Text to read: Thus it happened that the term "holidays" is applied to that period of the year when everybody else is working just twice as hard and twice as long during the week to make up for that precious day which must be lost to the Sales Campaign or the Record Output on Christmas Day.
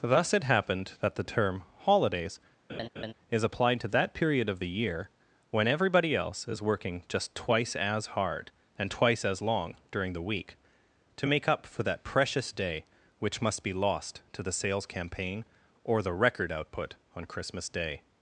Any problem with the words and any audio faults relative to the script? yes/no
yes